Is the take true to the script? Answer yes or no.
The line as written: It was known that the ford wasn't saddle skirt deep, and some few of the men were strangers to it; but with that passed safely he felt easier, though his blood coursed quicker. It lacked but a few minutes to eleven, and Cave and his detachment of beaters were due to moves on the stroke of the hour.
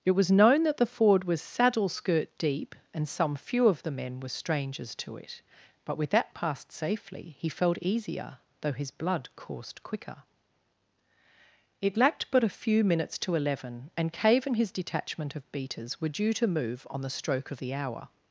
no